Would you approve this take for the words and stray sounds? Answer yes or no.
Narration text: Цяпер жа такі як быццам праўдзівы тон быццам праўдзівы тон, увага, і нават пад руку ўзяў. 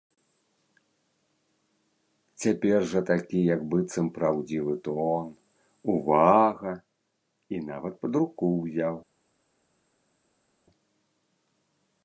no